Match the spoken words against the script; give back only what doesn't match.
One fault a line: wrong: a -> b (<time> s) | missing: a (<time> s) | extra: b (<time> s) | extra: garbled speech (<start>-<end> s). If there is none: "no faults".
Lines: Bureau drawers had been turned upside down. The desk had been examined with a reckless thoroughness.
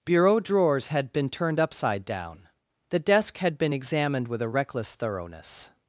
no faults